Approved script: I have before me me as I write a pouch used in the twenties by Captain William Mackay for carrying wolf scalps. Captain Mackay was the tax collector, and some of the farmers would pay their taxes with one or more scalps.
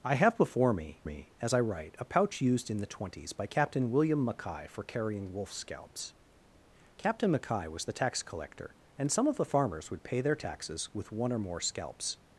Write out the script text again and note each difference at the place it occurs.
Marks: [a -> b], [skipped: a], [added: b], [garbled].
I have before me me as I write a pouch used in the twenties by Captain William Mackay for carrying wolf scalps. Captain Mackay was the tax collector, and some of the farmers would pay their taxes with one or more scalps.